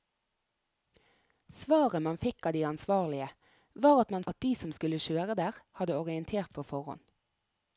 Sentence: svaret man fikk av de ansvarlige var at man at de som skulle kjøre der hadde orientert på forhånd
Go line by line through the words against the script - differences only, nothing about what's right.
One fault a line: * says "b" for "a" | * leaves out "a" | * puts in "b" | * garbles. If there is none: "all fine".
all fine